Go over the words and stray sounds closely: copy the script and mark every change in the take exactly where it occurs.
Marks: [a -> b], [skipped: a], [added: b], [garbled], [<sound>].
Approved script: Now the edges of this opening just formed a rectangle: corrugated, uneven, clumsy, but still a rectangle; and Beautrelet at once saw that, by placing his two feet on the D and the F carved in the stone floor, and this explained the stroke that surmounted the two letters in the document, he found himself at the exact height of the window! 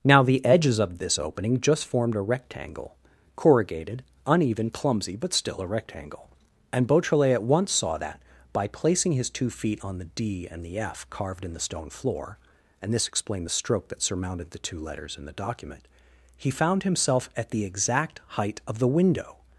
Now the edges of this opening just formed a rectangle: corrugated, uneven, clumsy, but still a rectangle; and Beautrelet at once saw that, by placing his two feet on the D and the F carved in the stone floor, and this explained the stroke that surmounted the two letters in the document, he found himself at the exact height of the window!